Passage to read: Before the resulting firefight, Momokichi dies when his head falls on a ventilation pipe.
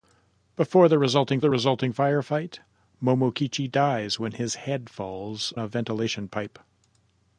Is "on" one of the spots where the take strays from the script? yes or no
yes